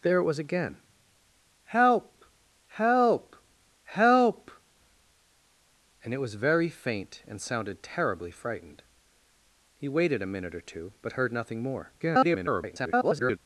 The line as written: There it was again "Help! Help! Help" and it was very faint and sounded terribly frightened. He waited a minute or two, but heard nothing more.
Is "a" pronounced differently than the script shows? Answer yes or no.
no